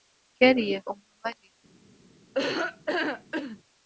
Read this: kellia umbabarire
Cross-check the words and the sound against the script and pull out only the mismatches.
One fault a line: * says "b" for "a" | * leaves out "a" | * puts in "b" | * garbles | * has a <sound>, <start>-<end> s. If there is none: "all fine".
* has a laugh, 2.3-3.6 s